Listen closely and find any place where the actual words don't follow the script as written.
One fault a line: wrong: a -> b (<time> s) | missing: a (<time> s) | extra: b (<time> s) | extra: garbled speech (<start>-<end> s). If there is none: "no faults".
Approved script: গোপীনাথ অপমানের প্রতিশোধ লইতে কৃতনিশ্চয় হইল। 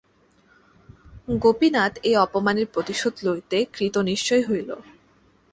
extra: এই (2.0 s)